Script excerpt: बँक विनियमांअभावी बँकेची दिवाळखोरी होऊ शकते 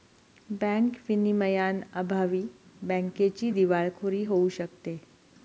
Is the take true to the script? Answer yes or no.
yes